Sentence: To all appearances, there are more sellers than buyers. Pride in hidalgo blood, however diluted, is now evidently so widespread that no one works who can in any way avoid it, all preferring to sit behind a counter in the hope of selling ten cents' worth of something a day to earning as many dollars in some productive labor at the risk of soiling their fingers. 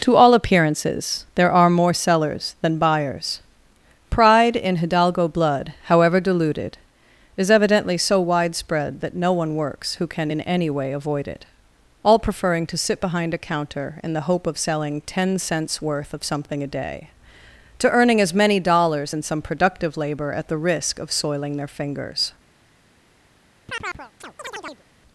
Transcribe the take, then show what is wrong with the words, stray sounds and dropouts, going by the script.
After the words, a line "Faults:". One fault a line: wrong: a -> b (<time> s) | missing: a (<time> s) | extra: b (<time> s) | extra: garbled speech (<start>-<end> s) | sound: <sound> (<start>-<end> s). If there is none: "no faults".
To all appearances, there are more sellers than buyers. Pride in hidalgo blood, however diluted, is evidently so widespread that no one works who can in any way avoid it, all preferring to sit behind a counter in the hope of selling ten cents' worth of something a day to earning as many dollars in some productive labor at the risk of soiling their fingers.
Faults:
missing: now (7.5 s)
sound: chirp (23.7-24.8 s)